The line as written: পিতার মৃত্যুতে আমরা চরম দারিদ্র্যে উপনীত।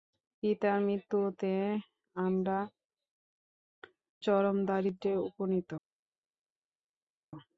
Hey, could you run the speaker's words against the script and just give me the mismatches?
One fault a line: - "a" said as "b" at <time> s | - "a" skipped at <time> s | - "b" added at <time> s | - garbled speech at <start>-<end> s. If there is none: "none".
none